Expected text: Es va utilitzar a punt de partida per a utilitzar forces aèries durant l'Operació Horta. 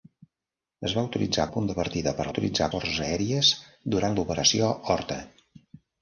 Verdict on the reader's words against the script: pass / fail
pass